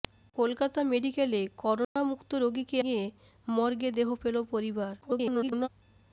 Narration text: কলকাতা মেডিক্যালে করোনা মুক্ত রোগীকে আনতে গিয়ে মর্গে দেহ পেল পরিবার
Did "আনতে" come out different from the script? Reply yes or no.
yes